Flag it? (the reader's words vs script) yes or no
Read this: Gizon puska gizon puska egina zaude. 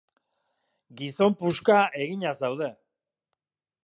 yes